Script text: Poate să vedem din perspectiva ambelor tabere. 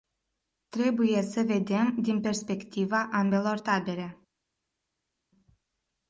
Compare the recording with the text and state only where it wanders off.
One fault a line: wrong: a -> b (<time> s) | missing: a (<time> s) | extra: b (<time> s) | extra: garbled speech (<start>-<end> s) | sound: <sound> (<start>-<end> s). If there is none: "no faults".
wrong: Poate -> Trebuie (0.7 s)